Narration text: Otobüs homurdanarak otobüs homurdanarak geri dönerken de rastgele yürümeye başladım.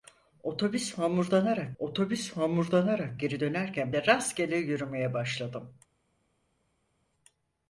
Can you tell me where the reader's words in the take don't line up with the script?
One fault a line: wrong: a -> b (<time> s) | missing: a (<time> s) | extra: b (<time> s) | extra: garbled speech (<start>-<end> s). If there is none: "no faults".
no faults